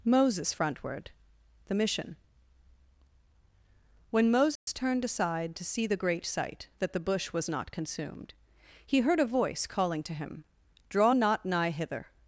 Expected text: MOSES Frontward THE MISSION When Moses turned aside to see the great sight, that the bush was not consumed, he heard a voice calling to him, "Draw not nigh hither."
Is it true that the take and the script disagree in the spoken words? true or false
false